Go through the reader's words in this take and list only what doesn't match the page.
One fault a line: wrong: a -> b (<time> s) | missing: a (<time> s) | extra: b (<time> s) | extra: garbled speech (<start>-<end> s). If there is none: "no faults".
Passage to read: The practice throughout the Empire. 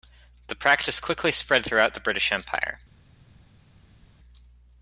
extra: quickly spread (1.0 s)
extra: British (2.0 s)